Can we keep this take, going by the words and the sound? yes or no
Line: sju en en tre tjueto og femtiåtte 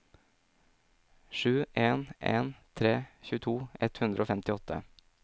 no